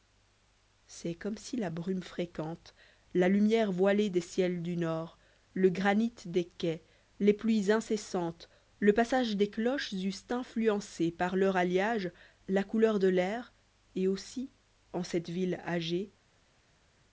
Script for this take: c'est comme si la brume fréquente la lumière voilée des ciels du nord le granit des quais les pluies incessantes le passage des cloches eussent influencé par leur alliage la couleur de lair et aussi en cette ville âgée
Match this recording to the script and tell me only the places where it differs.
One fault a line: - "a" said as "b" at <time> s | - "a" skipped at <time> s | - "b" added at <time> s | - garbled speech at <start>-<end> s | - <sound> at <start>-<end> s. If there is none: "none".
none